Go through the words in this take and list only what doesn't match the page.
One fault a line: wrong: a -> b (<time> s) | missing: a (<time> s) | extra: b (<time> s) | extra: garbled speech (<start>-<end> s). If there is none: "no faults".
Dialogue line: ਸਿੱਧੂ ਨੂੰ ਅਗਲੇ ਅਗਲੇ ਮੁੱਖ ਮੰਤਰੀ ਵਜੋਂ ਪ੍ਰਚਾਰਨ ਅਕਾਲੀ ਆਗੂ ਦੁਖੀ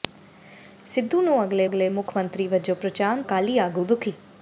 no faults